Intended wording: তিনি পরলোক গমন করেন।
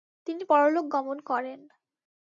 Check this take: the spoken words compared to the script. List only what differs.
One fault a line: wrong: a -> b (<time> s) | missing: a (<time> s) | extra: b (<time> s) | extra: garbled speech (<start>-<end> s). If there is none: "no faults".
no faults